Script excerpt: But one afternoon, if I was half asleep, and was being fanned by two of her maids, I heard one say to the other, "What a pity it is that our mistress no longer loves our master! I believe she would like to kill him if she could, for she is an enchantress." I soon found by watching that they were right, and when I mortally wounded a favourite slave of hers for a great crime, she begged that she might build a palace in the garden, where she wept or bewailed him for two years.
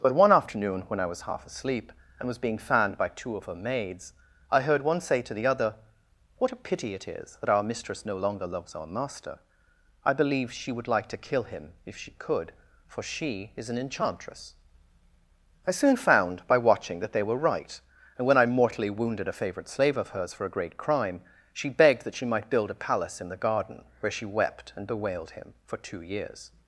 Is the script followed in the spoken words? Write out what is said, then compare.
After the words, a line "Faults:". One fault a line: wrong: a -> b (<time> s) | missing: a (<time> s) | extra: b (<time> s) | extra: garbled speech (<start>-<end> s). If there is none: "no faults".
But one afternoon, when I was half asleep, and was being fanned by two of her maids, I heard one say to the other, "What a pity it is that our mistress no longer loves our master! I believe she would like to kill him if she could, for she is an enchantress." I soon found by watching that they were right, and when I mortally wounded a favourite slave of hers for a great crime, she begged that she might build a palace in the garden, where she wept and bewailed him for two years.
Faults:
wrong: if -> when (0.9 s)
wrong: or -> and (24.8 s)